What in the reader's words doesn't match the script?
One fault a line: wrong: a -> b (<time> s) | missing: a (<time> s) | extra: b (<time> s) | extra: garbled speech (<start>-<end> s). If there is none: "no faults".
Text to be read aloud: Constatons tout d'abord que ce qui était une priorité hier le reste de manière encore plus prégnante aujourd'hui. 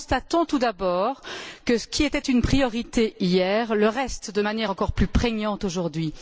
no faults